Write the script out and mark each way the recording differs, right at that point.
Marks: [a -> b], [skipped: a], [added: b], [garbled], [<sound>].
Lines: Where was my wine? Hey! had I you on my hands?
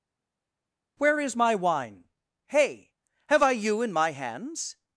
Where [was -> is] my wine? Hey! [had -> have] I you [on -> in] my hands?